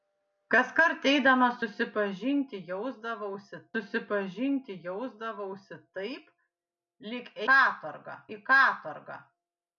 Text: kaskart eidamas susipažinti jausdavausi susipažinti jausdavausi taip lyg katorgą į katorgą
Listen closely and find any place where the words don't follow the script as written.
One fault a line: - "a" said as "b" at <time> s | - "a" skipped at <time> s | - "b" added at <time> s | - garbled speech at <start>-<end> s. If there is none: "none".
none